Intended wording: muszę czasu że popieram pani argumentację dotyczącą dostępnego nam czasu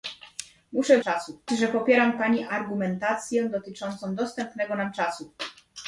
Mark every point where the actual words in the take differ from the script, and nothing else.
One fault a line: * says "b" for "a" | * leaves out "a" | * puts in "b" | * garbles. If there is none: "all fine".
all fine